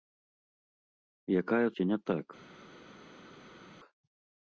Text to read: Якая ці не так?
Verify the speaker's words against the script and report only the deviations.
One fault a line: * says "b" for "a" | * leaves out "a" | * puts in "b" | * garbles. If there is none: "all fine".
all fine